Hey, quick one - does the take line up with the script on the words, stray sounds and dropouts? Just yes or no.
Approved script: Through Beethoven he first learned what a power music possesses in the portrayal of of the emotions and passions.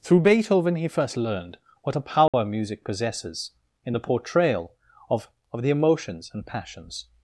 no